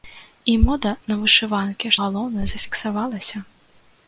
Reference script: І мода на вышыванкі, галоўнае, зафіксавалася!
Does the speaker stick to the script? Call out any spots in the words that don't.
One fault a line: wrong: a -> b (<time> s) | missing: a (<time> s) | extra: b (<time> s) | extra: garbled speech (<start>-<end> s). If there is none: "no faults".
no faults